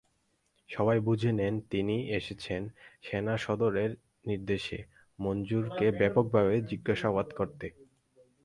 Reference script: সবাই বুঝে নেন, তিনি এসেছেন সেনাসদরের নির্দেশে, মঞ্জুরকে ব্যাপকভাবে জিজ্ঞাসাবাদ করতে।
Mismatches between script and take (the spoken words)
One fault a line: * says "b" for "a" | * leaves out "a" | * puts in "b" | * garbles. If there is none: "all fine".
all fine